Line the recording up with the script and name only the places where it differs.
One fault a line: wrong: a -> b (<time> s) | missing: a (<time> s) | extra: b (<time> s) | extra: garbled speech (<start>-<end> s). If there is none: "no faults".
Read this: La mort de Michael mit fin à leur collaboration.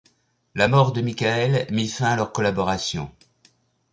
no faults